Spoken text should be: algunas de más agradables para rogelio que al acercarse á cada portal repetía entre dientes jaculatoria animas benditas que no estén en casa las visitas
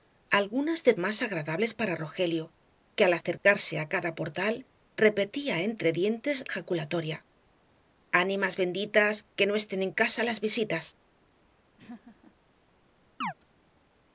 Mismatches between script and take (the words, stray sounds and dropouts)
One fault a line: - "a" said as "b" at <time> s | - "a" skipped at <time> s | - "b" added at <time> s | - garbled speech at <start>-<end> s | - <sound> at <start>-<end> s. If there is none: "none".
- laugh at 11.8-12.3 s
- chirp at 13.2-13.3 s